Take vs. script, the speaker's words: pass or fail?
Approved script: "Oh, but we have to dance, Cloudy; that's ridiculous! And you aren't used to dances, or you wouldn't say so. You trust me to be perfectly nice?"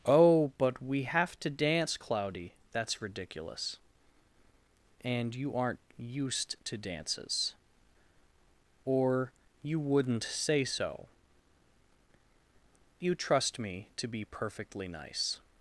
pass